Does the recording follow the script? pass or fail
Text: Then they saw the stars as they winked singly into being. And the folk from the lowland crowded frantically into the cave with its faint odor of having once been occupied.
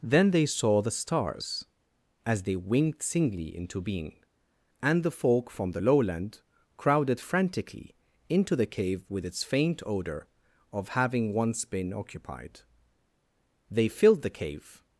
fail